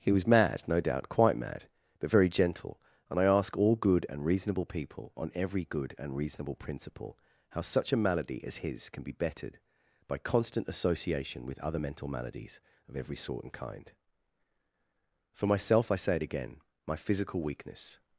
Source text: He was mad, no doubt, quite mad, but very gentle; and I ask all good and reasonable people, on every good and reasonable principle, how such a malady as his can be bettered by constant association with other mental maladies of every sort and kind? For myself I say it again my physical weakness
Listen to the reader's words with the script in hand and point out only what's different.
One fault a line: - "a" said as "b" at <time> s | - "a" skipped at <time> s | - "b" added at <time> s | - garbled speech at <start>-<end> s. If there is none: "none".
none